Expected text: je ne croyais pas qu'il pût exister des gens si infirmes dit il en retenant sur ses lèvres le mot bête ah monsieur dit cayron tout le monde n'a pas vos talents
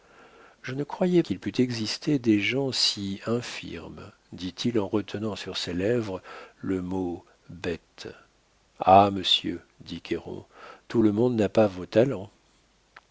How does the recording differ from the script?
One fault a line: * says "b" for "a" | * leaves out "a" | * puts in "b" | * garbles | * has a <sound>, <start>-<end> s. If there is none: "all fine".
* leaves out "pas"